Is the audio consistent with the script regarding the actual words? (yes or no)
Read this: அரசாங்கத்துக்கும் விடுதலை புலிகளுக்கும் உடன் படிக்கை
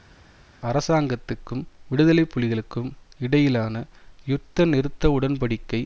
no